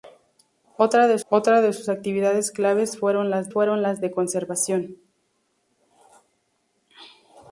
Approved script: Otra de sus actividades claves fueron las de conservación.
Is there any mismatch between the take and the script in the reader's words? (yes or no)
yes